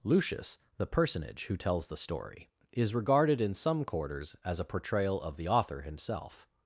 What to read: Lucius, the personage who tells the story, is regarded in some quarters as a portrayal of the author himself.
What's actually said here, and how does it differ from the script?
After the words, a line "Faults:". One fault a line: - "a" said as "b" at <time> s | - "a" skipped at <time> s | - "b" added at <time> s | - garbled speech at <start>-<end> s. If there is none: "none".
Lucius, the personage who tells the story, is regarded in some quarters as a portrayal of the author himself.
Faults:
none